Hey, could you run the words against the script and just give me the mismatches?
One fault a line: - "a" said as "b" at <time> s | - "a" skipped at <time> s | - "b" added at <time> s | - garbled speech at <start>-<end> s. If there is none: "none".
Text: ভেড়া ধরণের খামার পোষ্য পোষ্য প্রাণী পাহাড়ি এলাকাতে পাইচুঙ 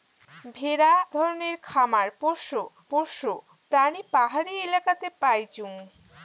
none